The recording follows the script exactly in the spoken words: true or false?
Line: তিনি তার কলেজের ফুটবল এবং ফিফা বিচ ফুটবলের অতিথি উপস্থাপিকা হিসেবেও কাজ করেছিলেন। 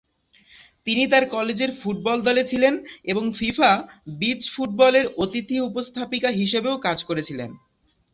false